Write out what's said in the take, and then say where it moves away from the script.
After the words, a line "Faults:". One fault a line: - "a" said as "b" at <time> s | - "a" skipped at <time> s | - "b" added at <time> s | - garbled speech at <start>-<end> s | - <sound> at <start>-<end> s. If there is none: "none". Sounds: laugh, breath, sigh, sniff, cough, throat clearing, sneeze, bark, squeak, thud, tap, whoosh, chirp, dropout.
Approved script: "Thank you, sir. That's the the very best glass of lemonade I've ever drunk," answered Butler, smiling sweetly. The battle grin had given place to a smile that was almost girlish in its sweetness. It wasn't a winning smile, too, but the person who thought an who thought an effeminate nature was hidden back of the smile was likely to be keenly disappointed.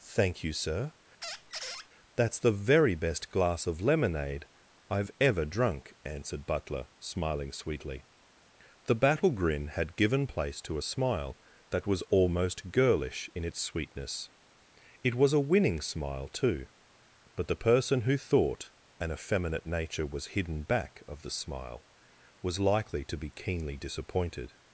"Thank you, sir. That's the very best glass of lemonade I've ever drunk," answered Butler, smiling sweetly. The battle grin had given place to a smile that was almost girlish in its sweetness. It was a winning smile, too, but the person who thought an effeminate nature was hidden back of the smile was likely to be keenly disappointed.
Faults:
- squeak at 1.2-1.9 s
- "the" skipped at 2.5 s
- "wasn't" said as "was" at 15.1 s
- "who thought an" skipped at 19.1 s